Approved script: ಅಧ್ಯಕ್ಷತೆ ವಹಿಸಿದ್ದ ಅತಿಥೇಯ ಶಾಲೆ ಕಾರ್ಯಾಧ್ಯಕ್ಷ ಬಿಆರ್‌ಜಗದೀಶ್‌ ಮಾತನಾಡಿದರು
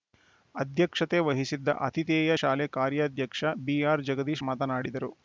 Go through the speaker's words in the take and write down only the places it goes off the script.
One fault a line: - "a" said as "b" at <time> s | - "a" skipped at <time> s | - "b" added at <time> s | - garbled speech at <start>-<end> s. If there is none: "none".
none